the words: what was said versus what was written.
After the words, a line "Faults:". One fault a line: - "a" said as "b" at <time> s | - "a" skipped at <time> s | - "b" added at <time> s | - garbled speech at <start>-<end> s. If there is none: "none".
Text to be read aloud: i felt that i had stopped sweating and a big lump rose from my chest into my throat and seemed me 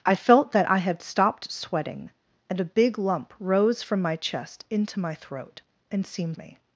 i felt that i had stopped sweating and a big lump rose from my chest into my throat and seemed me
Faults:
none